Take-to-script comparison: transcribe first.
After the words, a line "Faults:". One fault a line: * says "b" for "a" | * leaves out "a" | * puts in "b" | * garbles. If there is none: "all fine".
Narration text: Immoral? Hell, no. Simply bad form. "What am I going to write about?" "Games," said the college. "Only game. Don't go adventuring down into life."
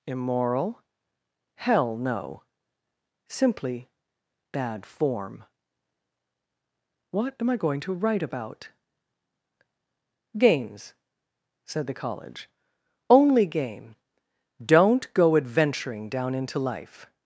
Immoral? Hell, no. Simply bad form. "What am I going to write about?" "Games," said the college. "Only game. Don't go adventuring down into life."
Faults:
all fine